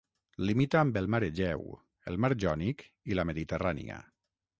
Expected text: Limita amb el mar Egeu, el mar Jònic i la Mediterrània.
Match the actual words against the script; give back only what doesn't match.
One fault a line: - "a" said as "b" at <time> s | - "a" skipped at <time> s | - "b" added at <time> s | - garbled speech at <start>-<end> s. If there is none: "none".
none